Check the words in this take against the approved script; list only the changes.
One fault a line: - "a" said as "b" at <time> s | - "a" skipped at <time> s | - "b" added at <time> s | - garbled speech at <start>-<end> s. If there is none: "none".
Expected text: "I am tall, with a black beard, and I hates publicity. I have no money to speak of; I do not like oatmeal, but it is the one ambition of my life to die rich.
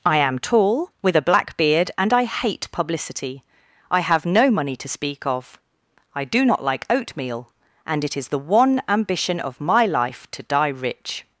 - "hates" said as "hate" at 2.2 s
- "but" said as "and" at 7.8 s